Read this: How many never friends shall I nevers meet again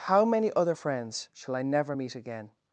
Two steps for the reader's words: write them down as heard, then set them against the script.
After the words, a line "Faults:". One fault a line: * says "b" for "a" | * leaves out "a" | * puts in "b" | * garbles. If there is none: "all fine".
How many other friends shall I never meet again
Faults:
* says "other" for "never"
* says "never" for "nevers"